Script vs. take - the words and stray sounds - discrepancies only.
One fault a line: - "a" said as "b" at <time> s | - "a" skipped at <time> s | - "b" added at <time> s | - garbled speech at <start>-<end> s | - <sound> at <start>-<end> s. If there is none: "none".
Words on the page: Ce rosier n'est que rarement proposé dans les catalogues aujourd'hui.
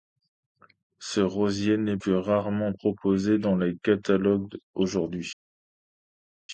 none